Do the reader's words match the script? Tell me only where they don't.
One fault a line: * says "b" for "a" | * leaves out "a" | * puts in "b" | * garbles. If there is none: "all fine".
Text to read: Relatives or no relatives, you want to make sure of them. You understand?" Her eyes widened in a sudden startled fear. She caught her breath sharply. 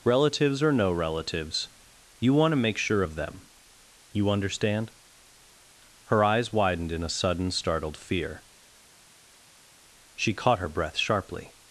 all fine